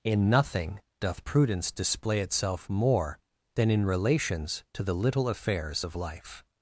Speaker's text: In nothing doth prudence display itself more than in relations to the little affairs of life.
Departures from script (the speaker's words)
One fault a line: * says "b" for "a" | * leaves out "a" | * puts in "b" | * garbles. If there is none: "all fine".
all fine